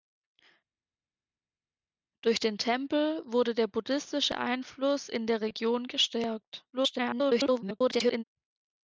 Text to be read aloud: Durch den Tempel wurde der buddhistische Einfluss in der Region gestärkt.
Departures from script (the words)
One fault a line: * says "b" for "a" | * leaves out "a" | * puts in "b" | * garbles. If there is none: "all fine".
* garbles